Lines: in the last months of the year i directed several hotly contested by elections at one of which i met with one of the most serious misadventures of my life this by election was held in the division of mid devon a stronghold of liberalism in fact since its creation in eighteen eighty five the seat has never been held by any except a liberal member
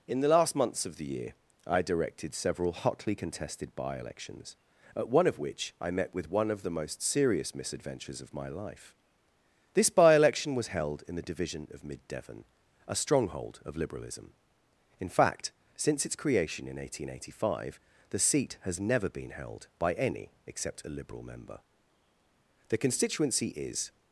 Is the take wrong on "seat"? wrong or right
right